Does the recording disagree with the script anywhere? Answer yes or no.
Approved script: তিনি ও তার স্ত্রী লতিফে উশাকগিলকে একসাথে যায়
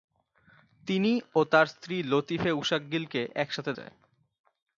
no